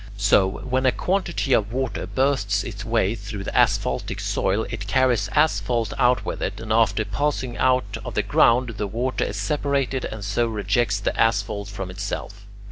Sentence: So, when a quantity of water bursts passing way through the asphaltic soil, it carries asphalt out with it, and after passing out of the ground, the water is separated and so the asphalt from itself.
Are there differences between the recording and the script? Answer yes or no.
yes